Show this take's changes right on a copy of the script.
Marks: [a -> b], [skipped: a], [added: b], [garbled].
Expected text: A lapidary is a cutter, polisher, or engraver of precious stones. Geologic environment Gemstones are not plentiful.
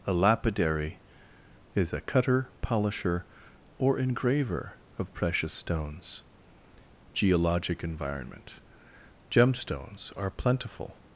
A lapidary is a cutter, polisher, or engraver of precious stones. Geologic environment Gemstones are [skipped: not] plentiful.